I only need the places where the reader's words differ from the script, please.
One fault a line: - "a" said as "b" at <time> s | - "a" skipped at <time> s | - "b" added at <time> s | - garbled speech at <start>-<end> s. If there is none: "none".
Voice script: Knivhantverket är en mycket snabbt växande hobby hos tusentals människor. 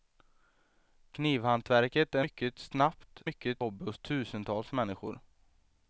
- "en" skipped at 2.2 s
- "växande" said as "mycket" at 3.2 s